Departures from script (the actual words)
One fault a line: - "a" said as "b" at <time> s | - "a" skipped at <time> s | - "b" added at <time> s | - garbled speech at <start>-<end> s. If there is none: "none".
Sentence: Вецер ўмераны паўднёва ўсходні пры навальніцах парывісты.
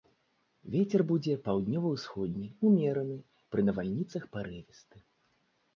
- "ўмераны" said as "будзе" at 1.1 s
- "ўмераны" added at 2.7 s